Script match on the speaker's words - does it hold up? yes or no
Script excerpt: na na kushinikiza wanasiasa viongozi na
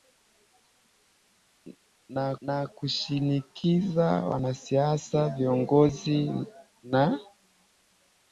yes